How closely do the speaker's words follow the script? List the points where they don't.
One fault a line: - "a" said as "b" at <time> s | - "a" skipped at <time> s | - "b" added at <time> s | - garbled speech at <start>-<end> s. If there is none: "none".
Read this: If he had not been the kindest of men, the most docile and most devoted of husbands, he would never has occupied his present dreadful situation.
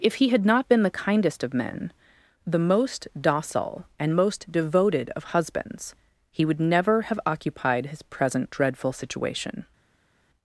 - "has" said as "have" at 7.0 s